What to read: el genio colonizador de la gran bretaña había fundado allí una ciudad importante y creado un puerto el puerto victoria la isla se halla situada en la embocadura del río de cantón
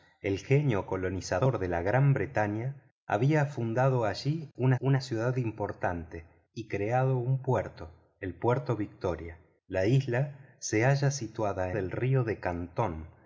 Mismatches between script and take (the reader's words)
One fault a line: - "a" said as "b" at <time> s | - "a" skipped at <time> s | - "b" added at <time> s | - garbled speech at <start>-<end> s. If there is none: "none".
- "una" added at 4.8 s
- "en la embocadura" skipped at 11.7 s